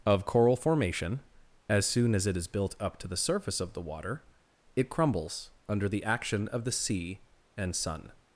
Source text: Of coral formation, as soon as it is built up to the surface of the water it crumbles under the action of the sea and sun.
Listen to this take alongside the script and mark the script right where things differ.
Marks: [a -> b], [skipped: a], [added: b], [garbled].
Of coral formation, as soon as it is built up to the surface of the water it crumbles under the action of the sea and sun.